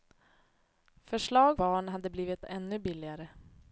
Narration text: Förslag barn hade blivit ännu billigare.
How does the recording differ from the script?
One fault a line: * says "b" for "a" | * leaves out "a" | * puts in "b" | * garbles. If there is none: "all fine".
all fine